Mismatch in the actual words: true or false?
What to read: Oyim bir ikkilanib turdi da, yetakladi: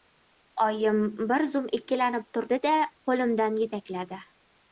true